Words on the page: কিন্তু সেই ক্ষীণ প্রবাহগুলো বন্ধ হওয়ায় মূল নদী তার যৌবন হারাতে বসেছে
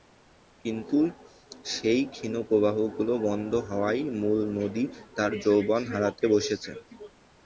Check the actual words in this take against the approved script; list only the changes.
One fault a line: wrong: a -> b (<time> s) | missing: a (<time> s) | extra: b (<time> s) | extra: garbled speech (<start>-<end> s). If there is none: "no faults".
no faults